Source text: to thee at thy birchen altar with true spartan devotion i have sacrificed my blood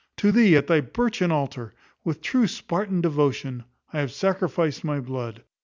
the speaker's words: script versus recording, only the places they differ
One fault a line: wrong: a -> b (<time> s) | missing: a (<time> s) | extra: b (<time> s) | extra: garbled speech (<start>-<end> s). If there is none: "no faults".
no faults